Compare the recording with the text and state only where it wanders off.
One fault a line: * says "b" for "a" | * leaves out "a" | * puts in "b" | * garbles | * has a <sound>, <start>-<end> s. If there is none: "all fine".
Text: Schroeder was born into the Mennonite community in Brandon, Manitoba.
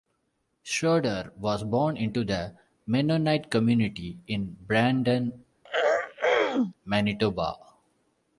* has a throat clearing, 5.6-6.7 s